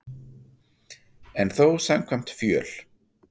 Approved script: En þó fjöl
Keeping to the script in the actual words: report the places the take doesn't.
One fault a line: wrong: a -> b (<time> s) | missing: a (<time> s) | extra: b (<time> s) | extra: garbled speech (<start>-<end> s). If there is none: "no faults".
extra: samkvæmt (1.9 s)